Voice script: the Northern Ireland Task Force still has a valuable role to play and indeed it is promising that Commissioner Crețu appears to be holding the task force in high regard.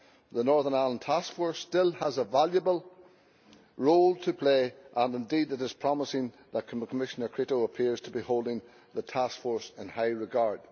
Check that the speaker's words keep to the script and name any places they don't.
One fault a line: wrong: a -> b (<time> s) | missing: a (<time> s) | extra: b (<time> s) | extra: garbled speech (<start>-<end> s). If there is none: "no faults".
no faults